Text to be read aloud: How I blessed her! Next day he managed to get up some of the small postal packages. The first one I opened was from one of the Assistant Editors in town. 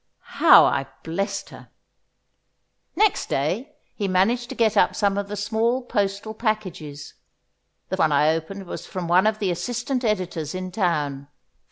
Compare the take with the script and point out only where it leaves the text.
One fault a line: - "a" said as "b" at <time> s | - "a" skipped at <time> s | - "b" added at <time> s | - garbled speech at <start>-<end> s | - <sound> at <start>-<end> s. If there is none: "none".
- "first" skipped at 8.0 s